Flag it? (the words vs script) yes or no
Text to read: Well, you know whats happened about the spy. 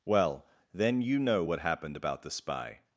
yes